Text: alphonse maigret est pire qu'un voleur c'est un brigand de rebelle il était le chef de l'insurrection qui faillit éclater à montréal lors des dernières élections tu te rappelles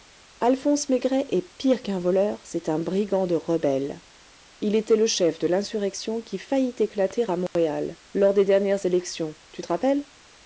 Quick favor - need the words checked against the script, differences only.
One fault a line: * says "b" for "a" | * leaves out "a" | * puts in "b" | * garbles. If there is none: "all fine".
all fine